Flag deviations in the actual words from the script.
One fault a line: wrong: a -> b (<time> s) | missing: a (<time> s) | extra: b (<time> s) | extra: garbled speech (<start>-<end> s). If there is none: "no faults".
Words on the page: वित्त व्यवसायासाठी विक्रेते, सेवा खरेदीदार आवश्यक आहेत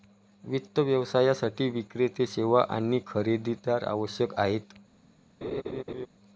extra: आणि (2.7 s)